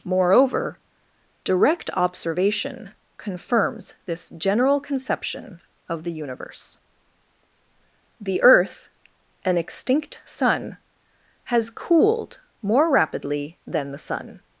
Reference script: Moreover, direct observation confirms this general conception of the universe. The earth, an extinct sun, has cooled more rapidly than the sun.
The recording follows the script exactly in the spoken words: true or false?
true